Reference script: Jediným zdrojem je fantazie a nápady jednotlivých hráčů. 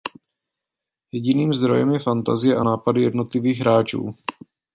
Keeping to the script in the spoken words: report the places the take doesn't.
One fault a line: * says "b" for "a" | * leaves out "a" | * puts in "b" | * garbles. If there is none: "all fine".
all fine